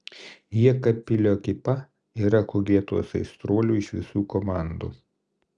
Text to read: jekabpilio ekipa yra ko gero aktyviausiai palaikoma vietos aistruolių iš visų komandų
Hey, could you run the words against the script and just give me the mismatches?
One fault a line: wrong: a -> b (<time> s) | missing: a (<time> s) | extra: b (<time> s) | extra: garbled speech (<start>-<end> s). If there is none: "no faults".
missing: gero aktyviausiai palaikoma (2.6 s)